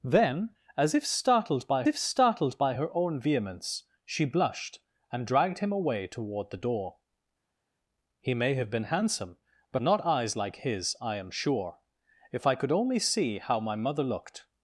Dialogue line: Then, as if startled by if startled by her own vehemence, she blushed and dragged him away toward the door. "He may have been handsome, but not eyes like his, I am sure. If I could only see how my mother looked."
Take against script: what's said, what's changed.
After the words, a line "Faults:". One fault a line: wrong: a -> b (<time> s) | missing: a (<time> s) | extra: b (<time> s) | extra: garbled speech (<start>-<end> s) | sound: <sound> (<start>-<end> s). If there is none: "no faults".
Then, as if startled by if startled by her own vehemence, she blushed and dragged him away toward the door. "He may have been handsome, but not eyes like his, I am sure. If I could only see how my mother looked."
Faults:
no faults